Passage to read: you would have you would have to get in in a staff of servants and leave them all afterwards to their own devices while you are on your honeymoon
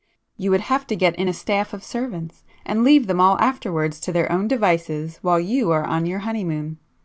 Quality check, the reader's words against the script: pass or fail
fail